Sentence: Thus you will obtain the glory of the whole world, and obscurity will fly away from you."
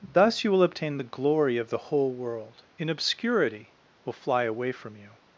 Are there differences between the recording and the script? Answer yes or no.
yes